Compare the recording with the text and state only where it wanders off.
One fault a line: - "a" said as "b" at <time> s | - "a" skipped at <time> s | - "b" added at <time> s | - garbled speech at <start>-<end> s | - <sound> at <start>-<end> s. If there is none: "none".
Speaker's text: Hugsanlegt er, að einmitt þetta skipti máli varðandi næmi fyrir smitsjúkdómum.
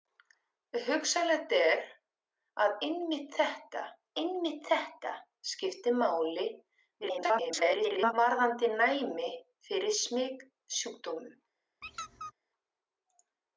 - "einmitt þetta" added at 4.2 s
- garbled speech at 7.0-8.1 s
- squeak at 11.8-12.3 s